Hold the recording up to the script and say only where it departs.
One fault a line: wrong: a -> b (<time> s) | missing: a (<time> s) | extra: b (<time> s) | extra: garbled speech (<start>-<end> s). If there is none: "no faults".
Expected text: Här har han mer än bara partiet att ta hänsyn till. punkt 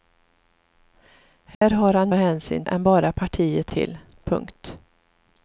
wrong: mer -> hänsyn (2.1 s)
missing: att ta hänsyn (3.7 s)